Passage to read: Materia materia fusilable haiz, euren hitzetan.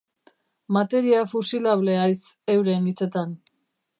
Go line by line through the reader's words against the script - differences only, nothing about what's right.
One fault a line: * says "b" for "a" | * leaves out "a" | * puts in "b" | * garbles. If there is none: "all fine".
* leaves out "materia"